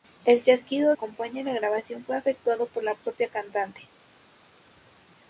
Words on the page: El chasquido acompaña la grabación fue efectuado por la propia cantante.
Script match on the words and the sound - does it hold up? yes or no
yes